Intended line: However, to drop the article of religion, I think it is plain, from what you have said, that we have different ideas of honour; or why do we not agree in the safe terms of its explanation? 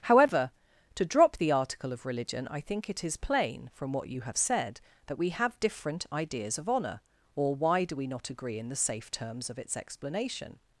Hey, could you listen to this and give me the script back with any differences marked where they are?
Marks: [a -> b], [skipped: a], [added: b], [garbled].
However, to drop the article of religion, I think it is plain, from what you have said, that we have different ideas of honour; or why do we not agree in the safe terms of its explanation?